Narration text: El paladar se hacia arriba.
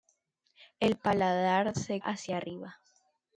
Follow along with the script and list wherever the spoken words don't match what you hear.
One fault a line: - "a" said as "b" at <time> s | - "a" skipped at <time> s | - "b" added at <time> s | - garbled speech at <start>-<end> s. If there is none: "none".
none